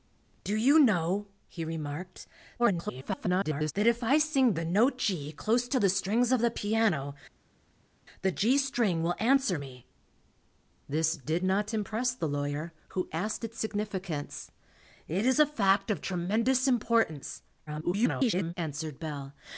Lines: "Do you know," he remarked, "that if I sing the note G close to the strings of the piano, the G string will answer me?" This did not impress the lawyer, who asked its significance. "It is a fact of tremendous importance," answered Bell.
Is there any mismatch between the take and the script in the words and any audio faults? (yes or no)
yes